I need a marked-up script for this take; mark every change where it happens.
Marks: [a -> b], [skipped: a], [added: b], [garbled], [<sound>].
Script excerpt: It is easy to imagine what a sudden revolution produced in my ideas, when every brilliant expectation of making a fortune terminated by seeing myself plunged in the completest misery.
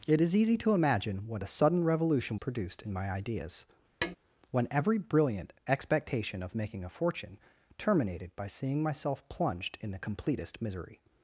It is easy to imagine what a sudden revolution produced in my ideas, [tap] when every brilliant expectation of making a fortune terminated by seeing myself plunged in the completest misery.